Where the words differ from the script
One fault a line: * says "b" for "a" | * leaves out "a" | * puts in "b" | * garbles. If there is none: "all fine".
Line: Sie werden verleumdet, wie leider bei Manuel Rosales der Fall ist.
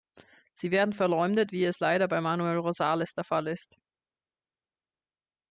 * puts in "es"